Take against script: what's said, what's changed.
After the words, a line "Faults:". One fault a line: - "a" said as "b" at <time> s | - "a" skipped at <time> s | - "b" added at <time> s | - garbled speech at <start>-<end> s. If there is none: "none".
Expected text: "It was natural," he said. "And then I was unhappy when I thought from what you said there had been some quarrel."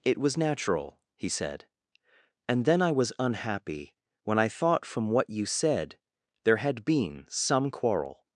"It was natural," he said. "And then I was unhappy when I thought from what you said there had been some quarrel."
Faults:
none